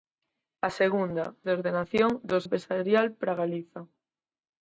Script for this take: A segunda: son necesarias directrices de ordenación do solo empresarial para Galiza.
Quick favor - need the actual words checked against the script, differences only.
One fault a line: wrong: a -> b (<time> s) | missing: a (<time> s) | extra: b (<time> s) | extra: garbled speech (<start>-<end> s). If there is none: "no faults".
missing: son necesarias directrices (1.2 s)
missing: solo (2.4 s)